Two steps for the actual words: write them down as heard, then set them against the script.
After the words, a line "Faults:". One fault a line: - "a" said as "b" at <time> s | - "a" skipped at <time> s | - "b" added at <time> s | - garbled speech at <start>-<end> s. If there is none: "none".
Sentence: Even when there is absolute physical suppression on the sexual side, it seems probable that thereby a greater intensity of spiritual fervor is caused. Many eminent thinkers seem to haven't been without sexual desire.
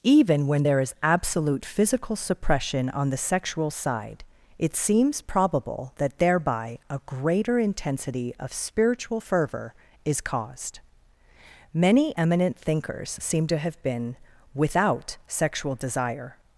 Even when there is absolute physical suppression on the sexual side, it seems probable that thereby a greater intensity of spiritual fervor is caused. Many eminent thinkers seem to have been without sexual desire.
Faults:
- "haven't" said as "have" at 13.6 s